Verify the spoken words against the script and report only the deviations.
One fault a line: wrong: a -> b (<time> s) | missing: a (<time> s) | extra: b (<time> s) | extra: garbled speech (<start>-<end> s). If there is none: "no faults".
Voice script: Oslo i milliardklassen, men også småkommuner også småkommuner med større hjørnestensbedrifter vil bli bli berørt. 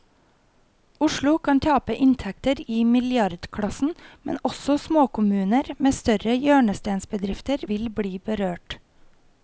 extra: kan tape inntekter (1.4 s)
missing: også småkommuner (5.7 s)
missing: bli (8.2 s)